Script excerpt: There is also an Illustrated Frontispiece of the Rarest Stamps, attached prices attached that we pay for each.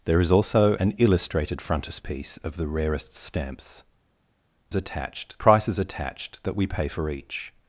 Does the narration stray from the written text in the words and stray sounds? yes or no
no